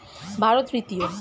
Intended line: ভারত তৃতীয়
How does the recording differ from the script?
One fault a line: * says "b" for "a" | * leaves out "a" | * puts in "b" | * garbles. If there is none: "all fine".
all fine